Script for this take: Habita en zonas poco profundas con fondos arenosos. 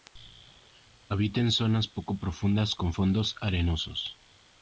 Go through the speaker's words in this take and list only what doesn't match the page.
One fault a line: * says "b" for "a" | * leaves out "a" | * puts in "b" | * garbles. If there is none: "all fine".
all fine